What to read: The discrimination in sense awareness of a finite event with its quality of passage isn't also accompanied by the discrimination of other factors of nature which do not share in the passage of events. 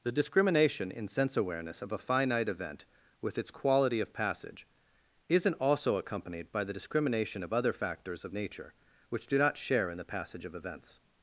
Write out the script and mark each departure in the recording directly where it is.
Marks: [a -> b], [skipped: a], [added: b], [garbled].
The discrimination in sense awareness of a finite event with its quality of passage isn't also accompanied by the discrimination of other factors of nature which do not share in the passage of events.